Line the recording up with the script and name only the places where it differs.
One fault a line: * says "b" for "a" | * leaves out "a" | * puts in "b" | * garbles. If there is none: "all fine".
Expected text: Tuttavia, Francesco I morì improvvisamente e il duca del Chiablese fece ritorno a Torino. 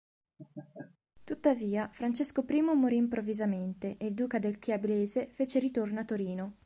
all fine